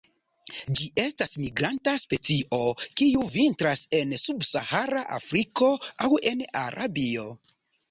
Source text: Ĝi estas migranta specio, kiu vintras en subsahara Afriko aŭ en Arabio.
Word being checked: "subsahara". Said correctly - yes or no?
yes